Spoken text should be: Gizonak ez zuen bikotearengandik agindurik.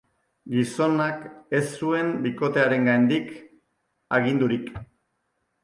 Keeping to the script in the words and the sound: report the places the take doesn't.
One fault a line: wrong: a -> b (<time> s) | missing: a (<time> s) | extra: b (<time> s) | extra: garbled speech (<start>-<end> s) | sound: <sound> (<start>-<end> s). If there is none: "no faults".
no faults